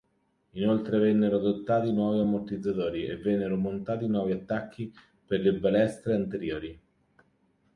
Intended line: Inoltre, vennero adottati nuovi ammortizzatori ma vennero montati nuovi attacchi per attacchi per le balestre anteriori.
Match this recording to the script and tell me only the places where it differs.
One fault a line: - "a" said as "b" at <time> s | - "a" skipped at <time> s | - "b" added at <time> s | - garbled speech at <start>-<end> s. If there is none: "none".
- "ma" said as "e" at 3.0 s
- "attacchi per" skipped at 5.4 s